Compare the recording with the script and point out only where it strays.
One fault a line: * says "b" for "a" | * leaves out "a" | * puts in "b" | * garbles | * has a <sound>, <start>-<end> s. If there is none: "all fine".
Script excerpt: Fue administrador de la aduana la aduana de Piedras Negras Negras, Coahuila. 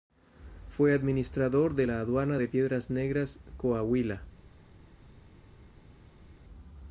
* leaves out "la aduana"
* leaves out "Negras"